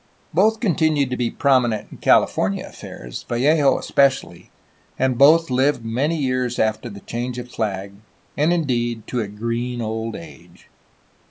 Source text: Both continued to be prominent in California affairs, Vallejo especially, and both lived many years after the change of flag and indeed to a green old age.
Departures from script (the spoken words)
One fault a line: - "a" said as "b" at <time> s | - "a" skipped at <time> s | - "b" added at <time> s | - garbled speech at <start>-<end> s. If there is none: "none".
none